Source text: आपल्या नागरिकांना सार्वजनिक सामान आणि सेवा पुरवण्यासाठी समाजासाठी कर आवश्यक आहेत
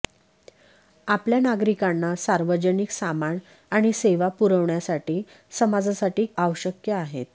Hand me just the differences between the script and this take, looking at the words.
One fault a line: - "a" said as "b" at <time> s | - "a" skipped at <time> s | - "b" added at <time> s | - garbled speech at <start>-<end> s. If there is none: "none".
- "कर" skipped at 6.3 s